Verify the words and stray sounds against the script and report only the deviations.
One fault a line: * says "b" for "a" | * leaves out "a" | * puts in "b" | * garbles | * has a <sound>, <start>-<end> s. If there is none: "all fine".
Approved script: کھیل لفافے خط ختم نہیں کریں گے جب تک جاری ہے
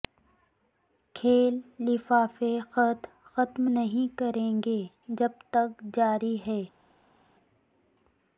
all fine